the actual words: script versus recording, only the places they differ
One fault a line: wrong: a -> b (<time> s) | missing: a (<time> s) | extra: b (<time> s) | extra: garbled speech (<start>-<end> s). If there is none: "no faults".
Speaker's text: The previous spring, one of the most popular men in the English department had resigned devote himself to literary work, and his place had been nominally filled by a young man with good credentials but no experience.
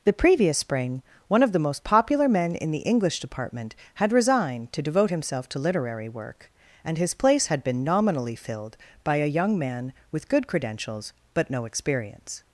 extra: to (4.7 s)